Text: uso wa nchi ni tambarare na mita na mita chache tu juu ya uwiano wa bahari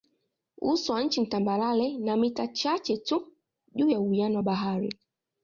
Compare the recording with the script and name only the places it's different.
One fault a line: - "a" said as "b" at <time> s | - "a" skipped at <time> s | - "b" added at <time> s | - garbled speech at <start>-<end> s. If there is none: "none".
- "na mita" skipped at 2.5 s